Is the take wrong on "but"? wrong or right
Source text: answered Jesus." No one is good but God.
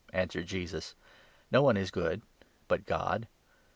right